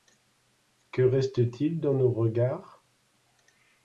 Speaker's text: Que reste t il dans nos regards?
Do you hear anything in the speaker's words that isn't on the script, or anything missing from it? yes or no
no